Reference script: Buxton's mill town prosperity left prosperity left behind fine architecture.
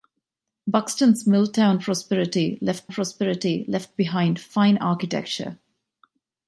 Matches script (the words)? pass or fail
pass